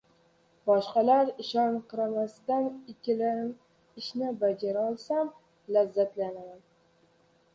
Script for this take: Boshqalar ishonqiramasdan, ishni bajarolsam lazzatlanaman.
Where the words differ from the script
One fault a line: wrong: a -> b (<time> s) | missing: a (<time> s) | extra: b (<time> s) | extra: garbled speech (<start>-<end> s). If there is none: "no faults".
no faults